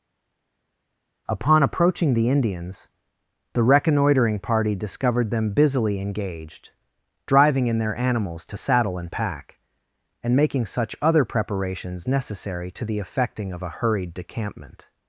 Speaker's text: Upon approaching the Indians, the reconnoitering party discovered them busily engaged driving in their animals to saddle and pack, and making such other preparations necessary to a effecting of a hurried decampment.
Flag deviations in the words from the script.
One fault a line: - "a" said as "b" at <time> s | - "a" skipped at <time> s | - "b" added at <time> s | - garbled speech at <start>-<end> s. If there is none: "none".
- "a" said as "the" at 12.8 s